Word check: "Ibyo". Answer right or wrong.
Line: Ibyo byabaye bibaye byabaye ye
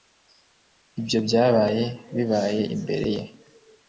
right